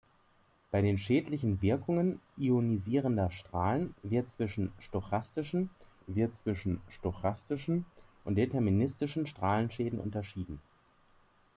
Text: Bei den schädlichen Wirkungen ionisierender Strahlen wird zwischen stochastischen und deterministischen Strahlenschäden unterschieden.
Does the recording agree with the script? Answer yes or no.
no